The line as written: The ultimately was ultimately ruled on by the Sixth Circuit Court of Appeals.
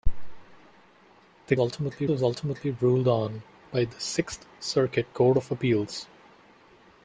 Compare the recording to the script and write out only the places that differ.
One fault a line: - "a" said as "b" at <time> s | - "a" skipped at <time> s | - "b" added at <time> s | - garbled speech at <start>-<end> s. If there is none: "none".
none